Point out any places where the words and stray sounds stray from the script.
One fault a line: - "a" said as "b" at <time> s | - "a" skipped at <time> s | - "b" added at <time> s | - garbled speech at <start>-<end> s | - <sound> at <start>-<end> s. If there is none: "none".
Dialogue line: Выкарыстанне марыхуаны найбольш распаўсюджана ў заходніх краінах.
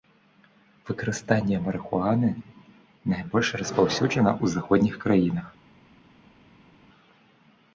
none